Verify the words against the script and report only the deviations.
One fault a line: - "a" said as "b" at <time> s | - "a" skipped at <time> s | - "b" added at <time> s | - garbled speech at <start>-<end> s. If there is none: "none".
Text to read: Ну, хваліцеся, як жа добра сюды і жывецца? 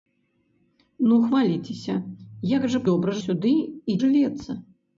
none